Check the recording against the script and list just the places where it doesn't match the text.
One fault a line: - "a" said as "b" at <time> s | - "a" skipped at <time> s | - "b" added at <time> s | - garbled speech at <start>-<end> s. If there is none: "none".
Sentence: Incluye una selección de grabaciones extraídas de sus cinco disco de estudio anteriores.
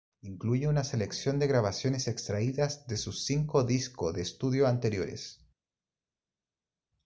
none